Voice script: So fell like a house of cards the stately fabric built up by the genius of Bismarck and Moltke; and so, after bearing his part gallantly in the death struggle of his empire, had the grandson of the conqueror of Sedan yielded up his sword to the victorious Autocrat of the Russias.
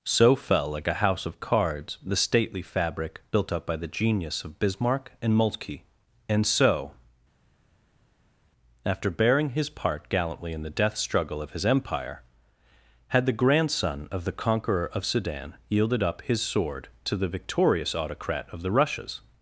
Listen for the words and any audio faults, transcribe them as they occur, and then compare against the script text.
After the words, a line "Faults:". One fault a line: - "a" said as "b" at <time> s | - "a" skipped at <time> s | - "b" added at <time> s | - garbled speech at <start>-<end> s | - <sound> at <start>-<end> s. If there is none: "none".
So fell like a house of cards the stately fabric built up by the genius of Bismarck and Moltke; and so, after bearing his part gallantly in the death struggle of his empire, had the grandson of the conqueror of Sedan yielded up his sword to the victorious Autocrat of the Russias.
Faults:
none